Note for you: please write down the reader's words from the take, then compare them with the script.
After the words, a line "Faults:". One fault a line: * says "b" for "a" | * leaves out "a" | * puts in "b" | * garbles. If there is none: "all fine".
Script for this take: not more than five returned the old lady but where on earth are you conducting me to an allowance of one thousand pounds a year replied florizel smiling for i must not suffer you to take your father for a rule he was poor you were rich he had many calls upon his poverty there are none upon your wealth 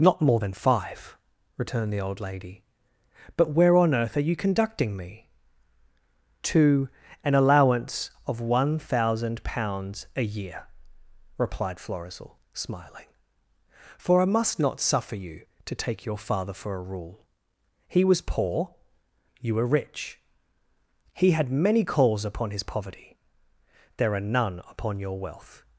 not more than five returned the old lady but where on earth are you conducting me to an allowance of one thousand pounds a year replied florizel smiling for i must not suffer you to take your father for a rule he was poor you were rich he had many calls upon his poverty there are none upon your wealth
Faults:
all fine